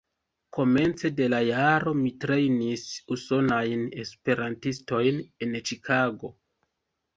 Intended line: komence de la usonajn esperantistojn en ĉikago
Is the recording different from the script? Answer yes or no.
yes